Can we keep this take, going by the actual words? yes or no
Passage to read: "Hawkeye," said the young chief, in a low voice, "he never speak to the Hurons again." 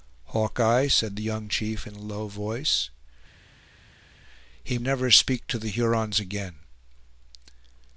yes